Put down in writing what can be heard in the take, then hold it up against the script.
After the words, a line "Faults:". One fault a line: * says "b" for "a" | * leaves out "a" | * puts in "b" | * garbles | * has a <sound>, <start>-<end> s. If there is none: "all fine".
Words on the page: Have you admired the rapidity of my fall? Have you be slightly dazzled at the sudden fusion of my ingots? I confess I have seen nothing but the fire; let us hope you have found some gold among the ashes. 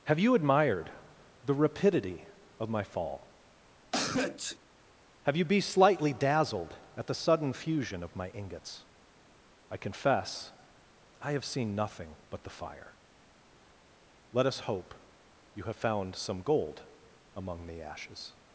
Have you admired the rapidity of my fall? Have you be slightly dazzled at the sudden fusion of my ingots? I confess I have seen nothing but the fire; let us hope you have found some gold among the ashes.
Faults:
* has a sneeze, 3.9-4.6 s